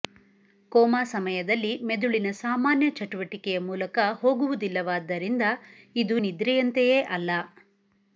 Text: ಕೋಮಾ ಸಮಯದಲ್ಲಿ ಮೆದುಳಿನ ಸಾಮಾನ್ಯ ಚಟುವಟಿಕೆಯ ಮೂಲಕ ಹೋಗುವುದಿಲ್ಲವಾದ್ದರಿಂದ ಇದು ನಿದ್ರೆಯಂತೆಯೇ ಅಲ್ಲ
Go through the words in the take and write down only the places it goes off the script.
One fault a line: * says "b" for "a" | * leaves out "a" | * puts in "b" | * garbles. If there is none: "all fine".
all fine